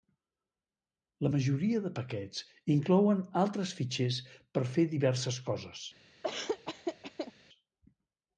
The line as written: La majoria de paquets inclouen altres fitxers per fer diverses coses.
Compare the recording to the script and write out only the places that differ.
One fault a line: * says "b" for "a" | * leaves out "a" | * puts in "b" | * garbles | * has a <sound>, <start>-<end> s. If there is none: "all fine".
* has a laugh, 6.2-7.3 s